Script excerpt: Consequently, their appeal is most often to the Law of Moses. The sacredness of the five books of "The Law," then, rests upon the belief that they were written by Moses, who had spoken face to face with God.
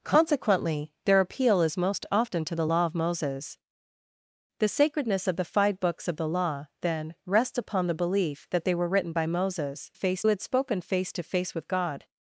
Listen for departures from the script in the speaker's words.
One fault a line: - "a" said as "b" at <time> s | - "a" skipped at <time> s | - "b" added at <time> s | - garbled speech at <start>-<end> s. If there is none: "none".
- "who" said as "face" at 9.9 s